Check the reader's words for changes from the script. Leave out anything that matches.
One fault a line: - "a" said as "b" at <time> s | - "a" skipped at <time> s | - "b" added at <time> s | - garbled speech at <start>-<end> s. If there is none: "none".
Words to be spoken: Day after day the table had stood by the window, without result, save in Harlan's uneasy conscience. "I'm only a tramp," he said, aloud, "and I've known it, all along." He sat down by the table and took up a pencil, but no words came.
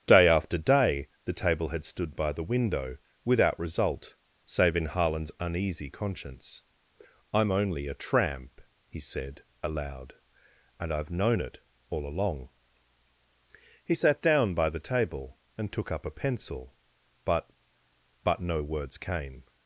- "but" added at 18.2 s